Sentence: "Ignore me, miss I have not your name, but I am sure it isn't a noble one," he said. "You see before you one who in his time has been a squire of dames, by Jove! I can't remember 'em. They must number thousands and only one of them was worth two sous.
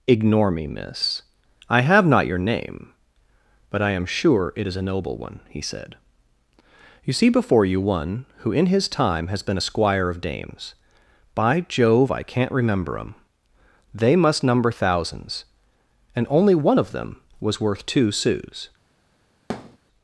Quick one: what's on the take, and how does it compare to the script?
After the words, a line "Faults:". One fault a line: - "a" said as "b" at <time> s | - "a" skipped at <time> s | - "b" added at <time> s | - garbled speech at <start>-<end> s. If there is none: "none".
"Ignore me, miss I have not your name, but I am sure it is a noble one," he said. "You see before you one who in his time has been a squire of dames, by Jove! I can't remember 'em. They must number thousands and only one of them was worth two sous.
Faults:
- "isn't" said as "is" at 4.7 s